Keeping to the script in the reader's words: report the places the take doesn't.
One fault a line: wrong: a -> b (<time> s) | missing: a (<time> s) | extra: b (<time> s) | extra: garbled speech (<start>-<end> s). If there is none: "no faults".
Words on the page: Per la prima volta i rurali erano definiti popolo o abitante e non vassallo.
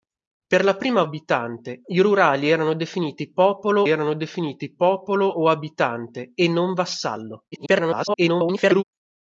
wrong: volta -> abitante (1.0 s)
extra: erano definiti popolo (3.9 s)
extra: garbled speech (7.5-8.8 s)